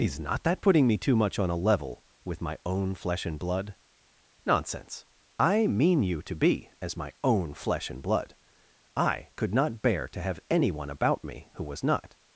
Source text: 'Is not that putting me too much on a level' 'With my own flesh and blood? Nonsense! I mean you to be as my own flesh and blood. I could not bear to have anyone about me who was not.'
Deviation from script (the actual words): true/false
false